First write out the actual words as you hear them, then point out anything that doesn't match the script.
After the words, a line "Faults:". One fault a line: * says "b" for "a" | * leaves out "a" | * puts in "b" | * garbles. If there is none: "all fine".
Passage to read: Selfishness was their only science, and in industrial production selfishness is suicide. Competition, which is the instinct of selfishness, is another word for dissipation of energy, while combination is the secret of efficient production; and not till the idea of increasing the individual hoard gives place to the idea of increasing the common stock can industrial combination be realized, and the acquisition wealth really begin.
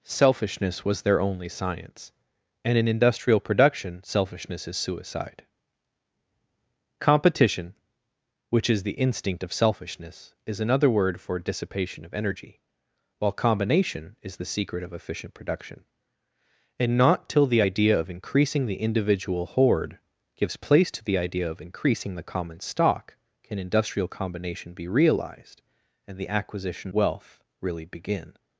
Selfishness was their only science, and in industrial production selfishness is suicide. Competition, which is the instinct of selfishness, is another word for dissipation of energy, while combination is the secret of efficient production; and not till the idea of increasing the individual hoard gives place to the idea of increasing the common stock can industrial combination be realized, and the acquisition wealth really begin.
Faults:
all fine